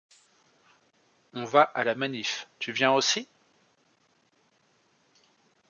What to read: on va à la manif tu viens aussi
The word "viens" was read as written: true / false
true